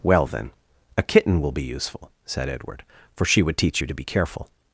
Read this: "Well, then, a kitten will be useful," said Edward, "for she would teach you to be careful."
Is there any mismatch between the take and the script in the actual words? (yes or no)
no